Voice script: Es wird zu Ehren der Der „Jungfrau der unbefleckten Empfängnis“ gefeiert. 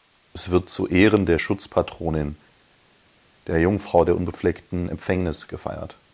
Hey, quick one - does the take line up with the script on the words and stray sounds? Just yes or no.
no